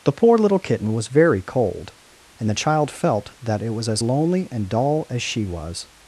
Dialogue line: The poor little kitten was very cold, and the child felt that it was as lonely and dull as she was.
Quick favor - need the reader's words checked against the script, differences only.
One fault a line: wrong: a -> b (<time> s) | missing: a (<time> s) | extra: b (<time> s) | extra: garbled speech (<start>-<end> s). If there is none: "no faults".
no faults